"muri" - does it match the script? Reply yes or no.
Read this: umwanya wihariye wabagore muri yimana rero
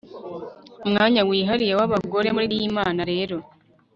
yes